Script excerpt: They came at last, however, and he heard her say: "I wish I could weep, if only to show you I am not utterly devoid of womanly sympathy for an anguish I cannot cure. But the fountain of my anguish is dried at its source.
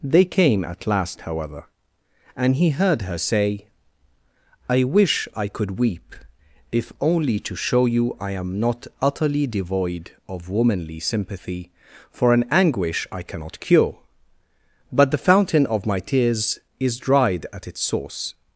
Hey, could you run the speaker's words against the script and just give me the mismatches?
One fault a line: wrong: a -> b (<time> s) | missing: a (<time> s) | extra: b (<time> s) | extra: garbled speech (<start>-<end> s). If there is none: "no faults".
wrong: anguish -> tears (16.0 s)